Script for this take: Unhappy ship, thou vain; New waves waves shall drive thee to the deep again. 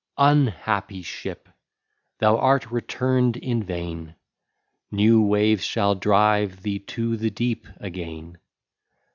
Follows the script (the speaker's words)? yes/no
no